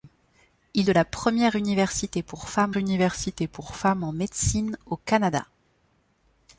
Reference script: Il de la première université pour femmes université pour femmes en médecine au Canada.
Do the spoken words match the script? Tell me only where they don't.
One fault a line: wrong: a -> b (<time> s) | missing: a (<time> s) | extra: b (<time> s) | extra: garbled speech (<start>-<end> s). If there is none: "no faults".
no faults